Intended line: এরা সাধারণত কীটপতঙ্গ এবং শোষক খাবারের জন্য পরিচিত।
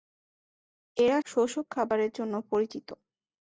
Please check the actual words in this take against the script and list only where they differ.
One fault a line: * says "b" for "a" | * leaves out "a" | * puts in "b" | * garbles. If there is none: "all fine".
* leaves out "সাধারণত কীটপতঙ্গ এবং"